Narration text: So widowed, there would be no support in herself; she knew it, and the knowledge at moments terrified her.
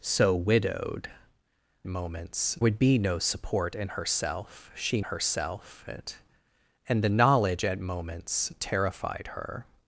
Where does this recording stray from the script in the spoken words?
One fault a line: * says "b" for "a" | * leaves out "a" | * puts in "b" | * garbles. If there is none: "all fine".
* says "moments" for "there"
* says "herself" for "knew"